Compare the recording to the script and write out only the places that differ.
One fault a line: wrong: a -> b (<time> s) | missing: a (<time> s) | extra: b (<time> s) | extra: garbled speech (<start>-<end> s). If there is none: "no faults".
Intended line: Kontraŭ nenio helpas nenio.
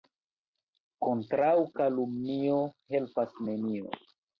wrong: nenio -> kalumnio (1.8 s)